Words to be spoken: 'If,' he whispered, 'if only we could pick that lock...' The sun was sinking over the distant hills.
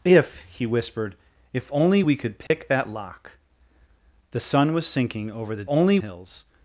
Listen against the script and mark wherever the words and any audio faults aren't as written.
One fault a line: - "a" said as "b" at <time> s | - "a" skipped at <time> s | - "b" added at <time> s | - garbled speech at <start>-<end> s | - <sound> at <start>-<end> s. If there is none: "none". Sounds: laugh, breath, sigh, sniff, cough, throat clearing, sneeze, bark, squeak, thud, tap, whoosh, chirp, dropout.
- dropout at 2.5-2.5 s
- "distant" said as "only" at 5.7 s